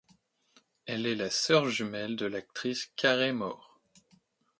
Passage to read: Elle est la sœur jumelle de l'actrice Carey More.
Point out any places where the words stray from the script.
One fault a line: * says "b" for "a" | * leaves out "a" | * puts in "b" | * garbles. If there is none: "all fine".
all fine